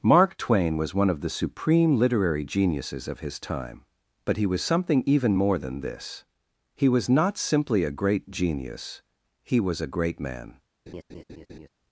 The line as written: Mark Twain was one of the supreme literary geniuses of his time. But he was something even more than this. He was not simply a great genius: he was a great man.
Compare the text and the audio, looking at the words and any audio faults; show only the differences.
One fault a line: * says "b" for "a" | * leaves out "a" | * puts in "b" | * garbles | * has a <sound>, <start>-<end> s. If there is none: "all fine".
* has a laugh, 10.9-11.7 s